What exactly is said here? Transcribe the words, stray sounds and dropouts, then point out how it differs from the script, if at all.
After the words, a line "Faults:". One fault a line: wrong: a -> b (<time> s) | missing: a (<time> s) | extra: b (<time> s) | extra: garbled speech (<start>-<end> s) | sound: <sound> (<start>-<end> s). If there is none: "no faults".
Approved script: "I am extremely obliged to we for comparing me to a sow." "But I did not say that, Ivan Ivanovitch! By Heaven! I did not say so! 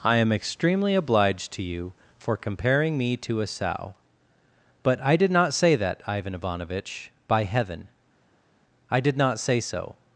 "I am extremely obliged to you for comparing me to a sow." "But I did not say that, Ivan Ivanovitch! By Heaven! I did not say so!
Faults:
wrong: we -> you (1.6 s)